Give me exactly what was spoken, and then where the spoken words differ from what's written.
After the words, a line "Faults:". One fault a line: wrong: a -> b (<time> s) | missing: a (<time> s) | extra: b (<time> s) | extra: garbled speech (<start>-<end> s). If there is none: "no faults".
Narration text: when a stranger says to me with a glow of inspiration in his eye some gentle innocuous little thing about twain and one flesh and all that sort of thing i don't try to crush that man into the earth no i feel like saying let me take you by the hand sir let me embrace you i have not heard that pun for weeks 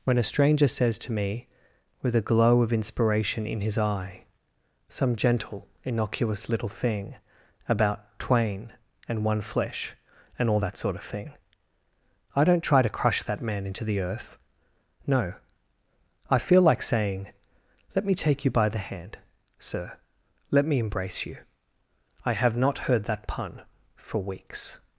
when a stranger says to me with a glow of inspiration in his eye some gentle innocuous little thing about twain and one flesh and all that sort of thing i don't try to crush that man into the earth no i feel like saying let me take you by the hand sir let me embrace you i have not heard that pun for weeks
Faults:
no faults